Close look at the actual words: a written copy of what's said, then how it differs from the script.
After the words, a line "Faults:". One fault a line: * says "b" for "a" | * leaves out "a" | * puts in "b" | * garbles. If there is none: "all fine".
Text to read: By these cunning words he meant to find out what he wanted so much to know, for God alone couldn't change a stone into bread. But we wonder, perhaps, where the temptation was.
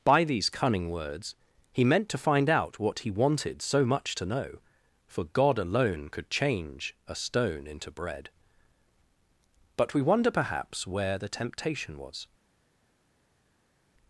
By these cunning words he meant to find out what he wanted so much to know, for God alone could change a stone into bread. But we wonder, perhaps, where the temptation was.
Faults:
* says "could" for "couldn't"